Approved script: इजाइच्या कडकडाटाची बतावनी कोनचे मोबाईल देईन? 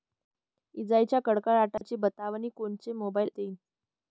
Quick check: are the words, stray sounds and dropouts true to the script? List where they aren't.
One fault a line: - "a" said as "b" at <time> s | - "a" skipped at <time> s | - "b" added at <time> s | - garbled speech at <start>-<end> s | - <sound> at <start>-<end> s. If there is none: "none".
- dropout at 1.8-1.8 s